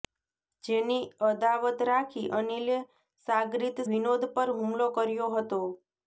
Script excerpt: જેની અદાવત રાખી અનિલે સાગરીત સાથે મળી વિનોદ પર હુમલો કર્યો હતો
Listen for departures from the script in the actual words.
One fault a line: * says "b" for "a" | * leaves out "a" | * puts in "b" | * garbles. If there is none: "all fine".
* leaves out "સાથે મળી"